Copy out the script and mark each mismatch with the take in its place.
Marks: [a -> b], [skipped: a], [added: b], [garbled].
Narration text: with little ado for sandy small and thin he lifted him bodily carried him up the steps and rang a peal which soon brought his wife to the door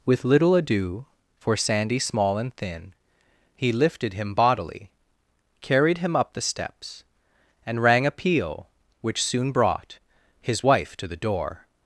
with little ado for sandy small and thin he lifted him bodily carried him up the steps and rang a peal which soon brought his wife to the door